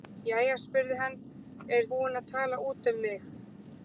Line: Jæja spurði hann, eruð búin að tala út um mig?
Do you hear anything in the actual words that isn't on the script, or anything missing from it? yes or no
no